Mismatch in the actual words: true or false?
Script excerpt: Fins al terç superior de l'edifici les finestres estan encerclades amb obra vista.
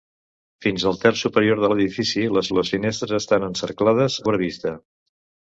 true